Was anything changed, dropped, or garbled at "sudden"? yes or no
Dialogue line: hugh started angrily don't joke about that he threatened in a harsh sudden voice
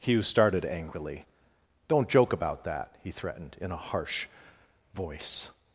yes